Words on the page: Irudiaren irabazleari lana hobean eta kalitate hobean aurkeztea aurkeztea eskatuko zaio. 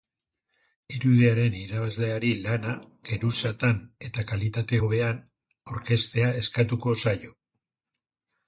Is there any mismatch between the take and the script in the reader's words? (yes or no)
yes